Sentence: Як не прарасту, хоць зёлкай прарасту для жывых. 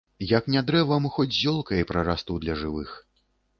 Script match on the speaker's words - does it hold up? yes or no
no